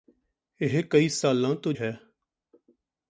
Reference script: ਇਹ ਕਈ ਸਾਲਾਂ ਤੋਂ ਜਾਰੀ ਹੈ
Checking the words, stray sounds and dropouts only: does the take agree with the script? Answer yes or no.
no